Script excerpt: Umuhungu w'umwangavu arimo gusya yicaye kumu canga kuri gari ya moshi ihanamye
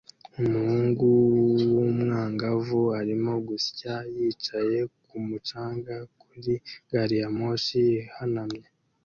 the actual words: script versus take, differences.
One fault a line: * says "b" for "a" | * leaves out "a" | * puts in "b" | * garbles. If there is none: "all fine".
all fine